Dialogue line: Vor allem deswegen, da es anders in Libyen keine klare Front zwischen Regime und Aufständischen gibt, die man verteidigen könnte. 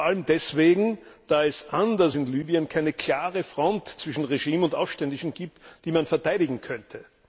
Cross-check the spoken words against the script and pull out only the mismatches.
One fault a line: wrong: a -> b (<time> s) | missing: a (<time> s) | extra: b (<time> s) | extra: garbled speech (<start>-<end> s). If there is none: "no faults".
no faults